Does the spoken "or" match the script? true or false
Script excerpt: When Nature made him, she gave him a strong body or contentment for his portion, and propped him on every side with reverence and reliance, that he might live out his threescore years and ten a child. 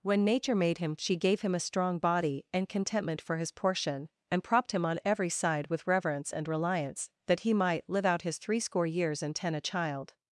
false